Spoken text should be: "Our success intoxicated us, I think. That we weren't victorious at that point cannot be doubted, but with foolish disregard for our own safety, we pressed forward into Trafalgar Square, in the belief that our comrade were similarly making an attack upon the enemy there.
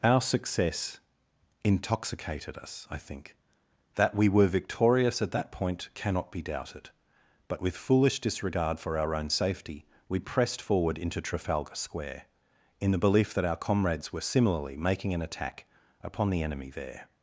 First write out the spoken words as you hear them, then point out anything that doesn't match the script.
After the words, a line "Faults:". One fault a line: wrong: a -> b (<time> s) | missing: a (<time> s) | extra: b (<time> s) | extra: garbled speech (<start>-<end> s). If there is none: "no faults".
"Our success intoxicated us, I think. That we were victorious at that point cannot be doubted, but with foolish disregard for our own safety, we pressed forward into Trafalgar Square, in the belief that our comrades were similarly making an attack upon the enemy there.
Faults:
wrong: weren't -> were (4.3 s)
wrong: comrade -> comrades (13.6 s)